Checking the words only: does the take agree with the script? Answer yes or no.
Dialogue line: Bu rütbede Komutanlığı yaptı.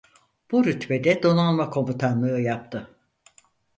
no